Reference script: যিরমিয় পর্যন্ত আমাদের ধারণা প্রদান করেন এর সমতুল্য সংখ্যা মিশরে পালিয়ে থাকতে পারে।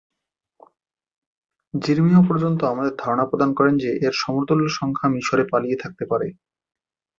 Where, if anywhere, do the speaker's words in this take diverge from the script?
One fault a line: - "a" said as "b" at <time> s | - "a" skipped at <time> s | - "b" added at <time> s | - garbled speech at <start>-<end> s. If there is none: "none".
- "যে" added at 3.8 s